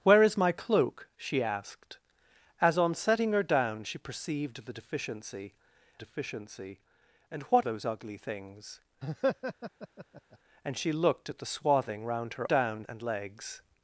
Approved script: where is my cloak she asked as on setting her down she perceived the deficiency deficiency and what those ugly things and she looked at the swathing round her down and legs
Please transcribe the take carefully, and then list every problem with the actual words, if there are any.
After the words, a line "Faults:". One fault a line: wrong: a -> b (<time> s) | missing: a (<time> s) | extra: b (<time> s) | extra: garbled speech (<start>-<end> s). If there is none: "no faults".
where is my cloak she asked as on setting her down she perceived the deficiency deficiency and what those ugly things and she looked at the swathing round her down and legs
Faults:
no faults